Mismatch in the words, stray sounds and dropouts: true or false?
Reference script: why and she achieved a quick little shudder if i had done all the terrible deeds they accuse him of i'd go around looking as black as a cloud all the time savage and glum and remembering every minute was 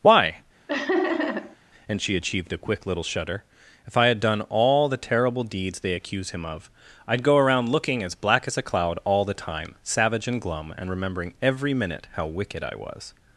true